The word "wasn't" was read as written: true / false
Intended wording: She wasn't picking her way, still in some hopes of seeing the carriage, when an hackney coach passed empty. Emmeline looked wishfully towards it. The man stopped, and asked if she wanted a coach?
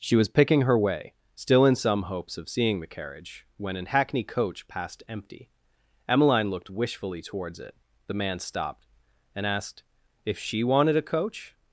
false